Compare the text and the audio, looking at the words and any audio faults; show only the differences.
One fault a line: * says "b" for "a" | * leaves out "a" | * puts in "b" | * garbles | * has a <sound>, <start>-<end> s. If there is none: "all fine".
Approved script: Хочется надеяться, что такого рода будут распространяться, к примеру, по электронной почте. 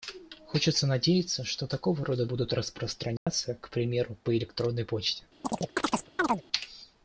* has a dropout, 3.2-3.3 s
* has a chirp, 5.4-6.4 s